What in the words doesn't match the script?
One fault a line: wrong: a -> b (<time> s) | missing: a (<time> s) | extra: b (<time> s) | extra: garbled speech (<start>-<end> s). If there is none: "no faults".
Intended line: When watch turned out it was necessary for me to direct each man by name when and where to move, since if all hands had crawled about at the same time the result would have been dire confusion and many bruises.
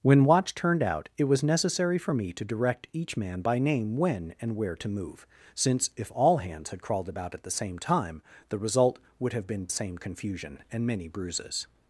wrong: dire -> same (9.7 s)